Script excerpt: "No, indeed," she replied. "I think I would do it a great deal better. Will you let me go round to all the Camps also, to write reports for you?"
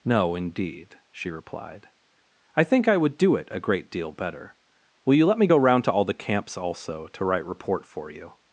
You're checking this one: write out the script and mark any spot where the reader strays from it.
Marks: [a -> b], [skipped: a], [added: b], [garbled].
"No, indeed," she replied. "I think I would do it a great deal better. Will you let me go round to all the Camps also, to write [reports -> report] for you?"